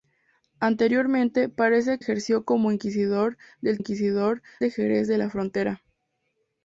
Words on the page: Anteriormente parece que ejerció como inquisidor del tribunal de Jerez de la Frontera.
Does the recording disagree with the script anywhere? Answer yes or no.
yes